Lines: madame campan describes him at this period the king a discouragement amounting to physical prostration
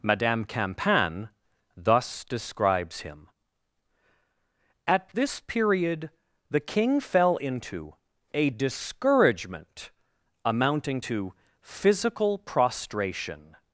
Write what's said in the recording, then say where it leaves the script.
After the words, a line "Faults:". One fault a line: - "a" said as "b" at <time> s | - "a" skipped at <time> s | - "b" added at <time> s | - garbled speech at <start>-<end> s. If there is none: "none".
madame campan thus describes him at this period the king fell into a discouragement amounting to physical prostration
Faults:
- "thus" added at 1.7 s
- "fell into" added at 7.0 s